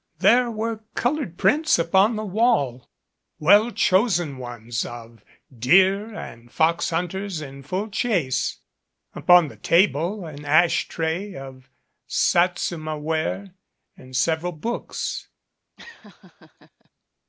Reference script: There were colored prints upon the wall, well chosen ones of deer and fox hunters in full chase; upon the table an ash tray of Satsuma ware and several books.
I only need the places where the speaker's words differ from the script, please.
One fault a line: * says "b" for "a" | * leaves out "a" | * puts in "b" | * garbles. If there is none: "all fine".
all fine